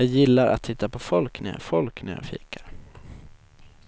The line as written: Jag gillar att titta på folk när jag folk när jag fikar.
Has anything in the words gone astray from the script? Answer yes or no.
no